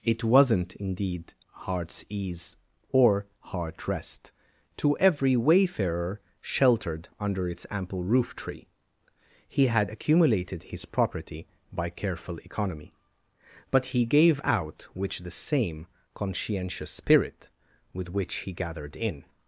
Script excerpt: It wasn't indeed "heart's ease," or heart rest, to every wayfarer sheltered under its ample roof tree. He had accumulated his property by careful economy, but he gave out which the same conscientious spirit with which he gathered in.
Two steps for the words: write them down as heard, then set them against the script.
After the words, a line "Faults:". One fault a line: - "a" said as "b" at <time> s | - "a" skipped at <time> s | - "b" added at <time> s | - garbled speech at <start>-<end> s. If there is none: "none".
It wasn't indeed "heart's ease," or heart rest, to every wayfarer sheltered under its ample roof tree. He had accumulated his property by careful economy, but he gave out which the same conscientious spirit with which he gathered in.
Faults:
none